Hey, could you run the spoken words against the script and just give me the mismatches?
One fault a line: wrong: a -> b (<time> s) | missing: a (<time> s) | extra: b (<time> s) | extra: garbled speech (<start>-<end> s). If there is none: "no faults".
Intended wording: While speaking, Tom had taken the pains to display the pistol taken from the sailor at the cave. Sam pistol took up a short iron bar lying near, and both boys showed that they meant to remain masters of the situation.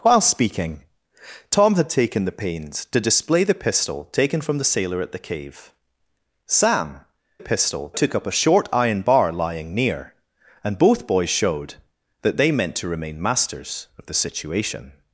no faults